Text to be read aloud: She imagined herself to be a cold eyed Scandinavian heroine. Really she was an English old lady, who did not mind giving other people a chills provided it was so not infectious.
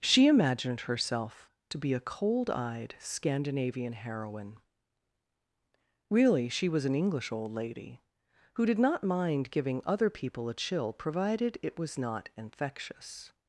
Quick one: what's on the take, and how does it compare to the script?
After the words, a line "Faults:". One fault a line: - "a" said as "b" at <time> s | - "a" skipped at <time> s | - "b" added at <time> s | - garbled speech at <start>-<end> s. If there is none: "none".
She imagined herself to be a cold eyed Scandinavian heroine. Really she was an English old lady, who did not mind giving other people a chill provided it was not infectious.
Faults:
- "chills" said as "chill" at 10.5 s
- "so" skipped at 12.0 s